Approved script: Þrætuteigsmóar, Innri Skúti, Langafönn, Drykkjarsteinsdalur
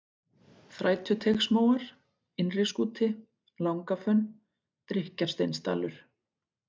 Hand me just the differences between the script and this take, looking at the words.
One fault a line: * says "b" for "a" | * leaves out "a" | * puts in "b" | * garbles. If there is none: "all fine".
all fine